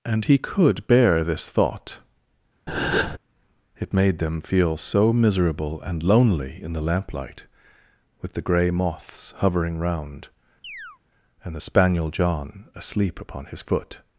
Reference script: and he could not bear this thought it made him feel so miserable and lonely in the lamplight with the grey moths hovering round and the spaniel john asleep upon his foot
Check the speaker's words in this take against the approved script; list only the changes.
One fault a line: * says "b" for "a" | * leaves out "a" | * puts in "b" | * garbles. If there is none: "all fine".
* leaves out "not"
* says "them" for "him"